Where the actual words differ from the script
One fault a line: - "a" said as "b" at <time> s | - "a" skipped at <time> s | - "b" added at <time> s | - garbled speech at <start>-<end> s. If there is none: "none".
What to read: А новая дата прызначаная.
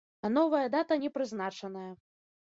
- "не" added at 0.9 s